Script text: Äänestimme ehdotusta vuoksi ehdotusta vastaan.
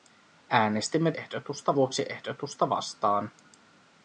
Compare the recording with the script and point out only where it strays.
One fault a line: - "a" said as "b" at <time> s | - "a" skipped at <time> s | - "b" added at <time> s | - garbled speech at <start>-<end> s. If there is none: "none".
none